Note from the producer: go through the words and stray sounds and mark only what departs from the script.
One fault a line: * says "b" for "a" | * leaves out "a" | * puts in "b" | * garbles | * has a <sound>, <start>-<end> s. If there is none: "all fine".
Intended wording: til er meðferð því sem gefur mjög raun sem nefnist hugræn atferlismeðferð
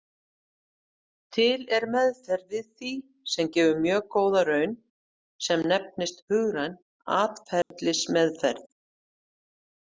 * puts in "við"
* puts in "góða"
* has a dropout, 7.6-7.7 s